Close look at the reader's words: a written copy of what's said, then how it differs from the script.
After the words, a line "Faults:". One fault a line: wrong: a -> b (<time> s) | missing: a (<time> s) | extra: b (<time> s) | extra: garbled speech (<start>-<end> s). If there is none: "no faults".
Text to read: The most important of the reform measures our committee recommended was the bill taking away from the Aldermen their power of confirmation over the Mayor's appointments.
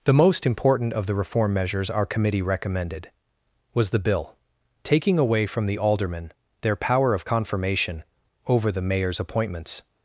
The most important of the reform measures our committee recommended was the bill taking away from the Aldermen their power of confirmation over the Mayor's appointments.
Faults:
no faults